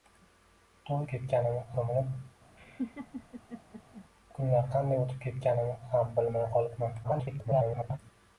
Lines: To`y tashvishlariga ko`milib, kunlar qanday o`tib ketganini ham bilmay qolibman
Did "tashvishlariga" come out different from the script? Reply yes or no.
yes